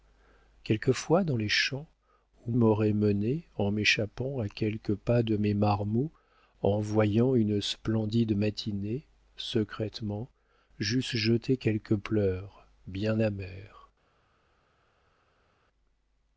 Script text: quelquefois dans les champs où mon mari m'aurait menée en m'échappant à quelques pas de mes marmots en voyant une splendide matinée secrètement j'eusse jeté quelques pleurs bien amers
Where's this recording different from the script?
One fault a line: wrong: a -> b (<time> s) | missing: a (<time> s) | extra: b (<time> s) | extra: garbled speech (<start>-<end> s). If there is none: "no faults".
missing: mon mari (2.5 s)